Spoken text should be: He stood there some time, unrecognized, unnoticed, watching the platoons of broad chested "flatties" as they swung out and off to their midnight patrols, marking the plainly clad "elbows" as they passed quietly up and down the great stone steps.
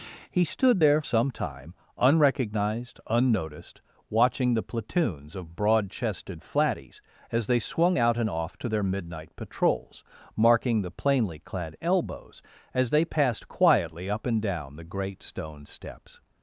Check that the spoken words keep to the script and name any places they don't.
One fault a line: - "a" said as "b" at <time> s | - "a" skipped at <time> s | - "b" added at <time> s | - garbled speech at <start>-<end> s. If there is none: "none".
none